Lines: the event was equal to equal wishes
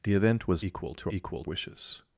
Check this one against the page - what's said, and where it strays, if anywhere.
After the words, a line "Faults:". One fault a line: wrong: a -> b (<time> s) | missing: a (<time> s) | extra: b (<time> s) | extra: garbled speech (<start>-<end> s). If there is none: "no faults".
the event was equal to equal wishes
Faults:
no faults